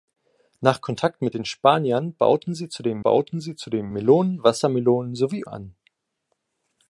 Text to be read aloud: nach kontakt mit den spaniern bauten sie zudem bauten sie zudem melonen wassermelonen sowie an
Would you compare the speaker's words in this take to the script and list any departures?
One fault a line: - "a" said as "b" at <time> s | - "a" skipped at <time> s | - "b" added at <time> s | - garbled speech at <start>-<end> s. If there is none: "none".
none